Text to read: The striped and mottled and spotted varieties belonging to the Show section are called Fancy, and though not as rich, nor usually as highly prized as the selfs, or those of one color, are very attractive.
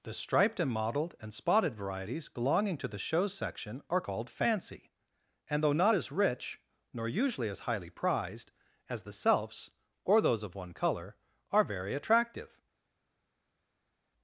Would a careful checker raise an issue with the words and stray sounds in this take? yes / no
no